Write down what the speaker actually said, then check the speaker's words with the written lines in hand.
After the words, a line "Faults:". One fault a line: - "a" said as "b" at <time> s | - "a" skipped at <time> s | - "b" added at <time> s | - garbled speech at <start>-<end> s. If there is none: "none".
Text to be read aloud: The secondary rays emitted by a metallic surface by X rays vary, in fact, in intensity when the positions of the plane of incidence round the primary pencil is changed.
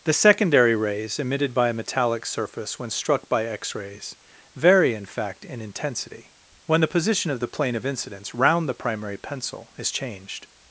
The secondary rays emitted by a metallic surface when struck by X rays vary, in fact, in intensity when the position of the plane of incidence round the primary pencil is changed.
Faults:
- "when struck" added at 2.8 s
- "positions" said as "position" at 6.9 s